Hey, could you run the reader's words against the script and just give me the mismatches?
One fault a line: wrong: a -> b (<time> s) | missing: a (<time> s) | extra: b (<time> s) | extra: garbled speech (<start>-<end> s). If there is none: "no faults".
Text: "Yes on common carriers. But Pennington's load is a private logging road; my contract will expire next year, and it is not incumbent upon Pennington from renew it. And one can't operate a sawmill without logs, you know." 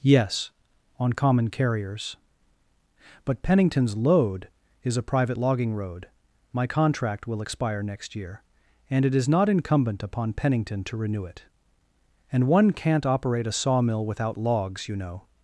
wrong: from -> to (10.8 s)